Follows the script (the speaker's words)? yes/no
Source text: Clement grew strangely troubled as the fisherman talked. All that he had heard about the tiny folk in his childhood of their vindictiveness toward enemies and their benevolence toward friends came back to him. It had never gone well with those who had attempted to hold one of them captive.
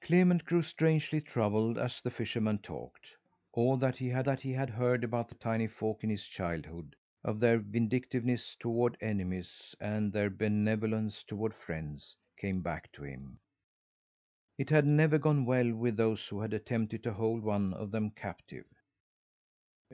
no